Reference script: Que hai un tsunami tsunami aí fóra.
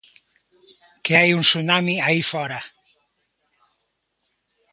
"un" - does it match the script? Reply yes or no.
yes